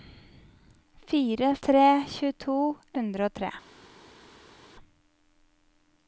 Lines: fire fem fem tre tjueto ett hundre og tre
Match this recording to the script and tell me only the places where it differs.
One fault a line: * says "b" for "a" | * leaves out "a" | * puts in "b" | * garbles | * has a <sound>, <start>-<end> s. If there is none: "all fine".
* leaves out "fem fem"
* leaves out "ett"